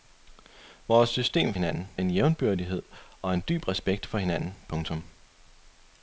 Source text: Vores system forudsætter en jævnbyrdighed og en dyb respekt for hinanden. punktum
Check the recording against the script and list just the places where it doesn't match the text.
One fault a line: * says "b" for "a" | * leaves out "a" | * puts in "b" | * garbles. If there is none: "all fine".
* says "hinanden" for "forudsætter"